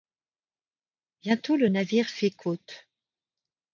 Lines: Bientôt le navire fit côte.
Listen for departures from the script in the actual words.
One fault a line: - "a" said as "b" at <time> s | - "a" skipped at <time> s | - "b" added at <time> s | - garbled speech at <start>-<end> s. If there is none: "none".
none